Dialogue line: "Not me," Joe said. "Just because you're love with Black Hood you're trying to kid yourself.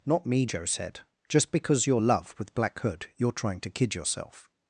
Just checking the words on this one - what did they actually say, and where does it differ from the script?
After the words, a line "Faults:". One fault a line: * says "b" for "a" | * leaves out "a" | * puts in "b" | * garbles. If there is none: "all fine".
"Not me," Joe said. "Just because you're love with Black Hood you're trying to kid yourself.
Faults:
all fine